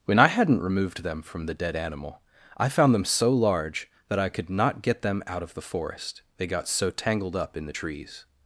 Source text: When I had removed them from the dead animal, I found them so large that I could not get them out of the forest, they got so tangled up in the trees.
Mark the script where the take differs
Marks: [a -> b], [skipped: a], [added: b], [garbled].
When I [had -> hadn't] removed them from the dead animal, I found them so large that I could not get them out of the forest, they got so tangled up in the trees.